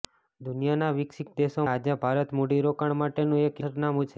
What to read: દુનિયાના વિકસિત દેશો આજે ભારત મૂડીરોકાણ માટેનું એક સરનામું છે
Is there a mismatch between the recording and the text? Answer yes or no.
no